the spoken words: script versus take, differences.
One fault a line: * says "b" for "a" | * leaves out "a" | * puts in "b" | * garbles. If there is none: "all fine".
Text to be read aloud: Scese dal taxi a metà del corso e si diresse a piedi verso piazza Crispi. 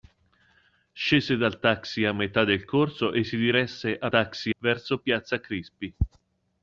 * says "taxi" for "piedi"